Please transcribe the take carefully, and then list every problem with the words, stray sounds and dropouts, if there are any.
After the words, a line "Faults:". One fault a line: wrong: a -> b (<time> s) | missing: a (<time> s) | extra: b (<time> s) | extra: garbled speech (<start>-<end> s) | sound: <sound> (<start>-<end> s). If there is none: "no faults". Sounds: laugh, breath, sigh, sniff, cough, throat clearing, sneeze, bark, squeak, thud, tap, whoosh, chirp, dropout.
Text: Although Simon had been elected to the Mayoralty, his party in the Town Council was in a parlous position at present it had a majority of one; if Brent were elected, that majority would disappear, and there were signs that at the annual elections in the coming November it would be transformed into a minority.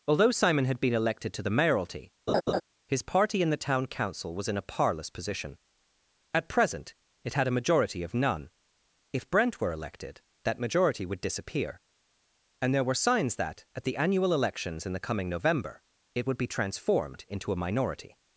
Although Simon had been elected to the Mayoralty, his party in the Town Council was in a parlous position at present it had a majority of none; if Brent were elected, that majority would disappear, and there were signs that at the annual elections in the coming November it would be transformed into a minority.
Faults:
sound: laugh (2.3-2.6 s)
wrong: one -> none (8.1 s)